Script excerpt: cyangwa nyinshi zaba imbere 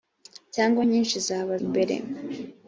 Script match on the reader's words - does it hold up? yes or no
yes